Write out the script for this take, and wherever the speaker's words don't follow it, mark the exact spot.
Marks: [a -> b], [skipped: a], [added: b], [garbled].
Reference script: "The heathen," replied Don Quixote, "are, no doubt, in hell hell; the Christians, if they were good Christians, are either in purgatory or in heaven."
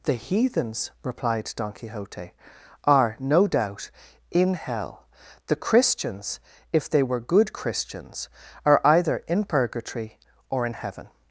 "The [heathen," -> heathens] replied Don Quixote, "are, no doubt, in hell [skipped: hell;] the Christians, if they were good Christians, are either in purgatory or in heaven."